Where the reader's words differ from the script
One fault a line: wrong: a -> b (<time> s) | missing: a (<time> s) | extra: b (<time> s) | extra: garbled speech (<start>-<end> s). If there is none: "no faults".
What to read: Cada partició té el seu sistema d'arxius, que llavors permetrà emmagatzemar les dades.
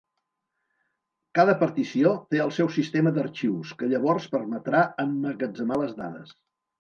no faults